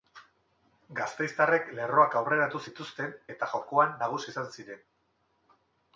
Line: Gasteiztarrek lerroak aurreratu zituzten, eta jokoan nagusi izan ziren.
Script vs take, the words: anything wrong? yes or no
no